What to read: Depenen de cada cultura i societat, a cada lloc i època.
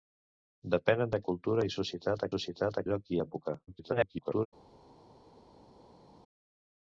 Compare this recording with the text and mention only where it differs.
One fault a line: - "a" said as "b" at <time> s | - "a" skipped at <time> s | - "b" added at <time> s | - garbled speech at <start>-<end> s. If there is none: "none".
- "cada" skipped at 1.2 s
- "cada" said as "societat" at 2.3 s
- garbled speech at 3.7-4.5 s